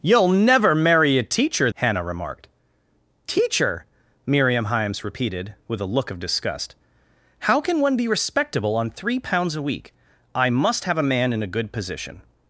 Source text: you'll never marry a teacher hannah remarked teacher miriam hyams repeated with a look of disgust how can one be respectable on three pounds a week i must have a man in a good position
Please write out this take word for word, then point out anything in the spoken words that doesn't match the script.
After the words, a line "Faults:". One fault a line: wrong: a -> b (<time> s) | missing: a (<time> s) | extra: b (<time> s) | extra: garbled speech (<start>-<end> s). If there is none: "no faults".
you'll never marry a teacher hannah remarked teacher miriam hyams repeated with a look of disgust how can one be respectable on three pounds a week i must have a man in a good position
Faults:
no faults